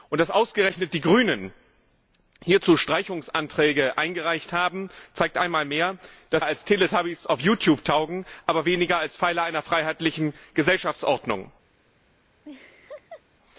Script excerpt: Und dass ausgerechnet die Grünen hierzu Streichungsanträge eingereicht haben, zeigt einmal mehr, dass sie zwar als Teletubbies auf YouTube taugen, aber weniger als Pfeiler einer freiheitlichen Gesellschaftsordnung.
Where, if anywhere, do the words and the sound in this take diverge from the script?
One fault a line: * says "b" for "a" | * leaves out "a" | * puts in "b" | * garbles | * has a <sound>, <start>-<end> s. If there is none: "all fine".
* leaves out "sie zwar"
* has a laugh, 12.4-13.2 s